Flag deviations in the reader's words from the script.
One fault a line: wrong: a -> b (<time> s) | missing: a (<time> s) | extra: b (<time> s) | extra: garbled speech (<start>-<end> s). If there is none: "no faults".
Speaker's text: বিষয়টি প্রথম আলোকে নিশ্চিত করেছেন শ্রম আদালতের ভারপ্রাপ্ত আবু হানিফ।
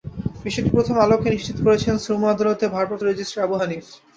extra: রেজিস্ট্রার (3.0 s)